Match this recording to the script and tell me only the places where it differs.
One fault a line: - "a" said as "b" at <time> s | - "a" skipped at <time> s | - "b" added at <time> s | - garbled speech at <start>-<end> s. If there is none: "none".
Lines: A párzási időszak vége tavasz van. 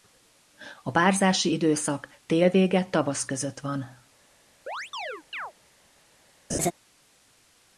- "tél" added at 2.3 s
- "között" added at 3.2 s